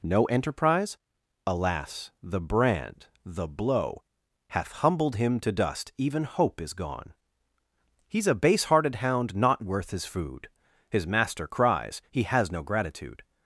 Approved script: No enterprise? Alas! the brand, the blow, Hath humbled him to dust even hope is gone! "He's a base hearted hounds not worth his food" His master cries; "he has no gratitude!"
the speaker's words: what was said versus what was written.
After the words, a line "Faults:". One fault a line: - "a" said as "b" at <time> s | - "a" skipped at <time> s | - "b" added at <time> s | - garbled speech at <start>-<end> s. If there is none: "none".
No enterprise? Alas! the brand, the blow, Hath humbled him to dust even hope is gone! "He's a base hearted hound not worth his food" His master cries; "he has no gratitude!"
Faults:
- "hounds" said as "hound" at 8.9 s